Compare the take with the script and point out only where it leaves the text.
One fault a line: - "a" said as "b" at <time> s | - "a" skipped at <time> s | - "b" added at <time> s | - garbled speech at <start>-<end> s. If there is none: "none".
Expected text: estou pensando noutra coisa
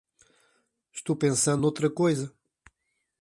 none